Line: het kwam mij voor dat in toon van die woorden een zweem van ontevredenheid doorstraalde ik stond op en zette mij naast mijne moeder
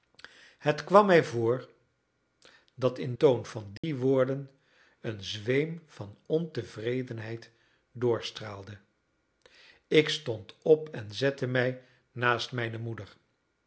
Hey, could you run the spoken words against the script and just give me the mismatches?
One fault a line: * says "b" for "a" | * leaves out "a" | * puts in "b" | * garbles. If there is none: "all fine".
all fine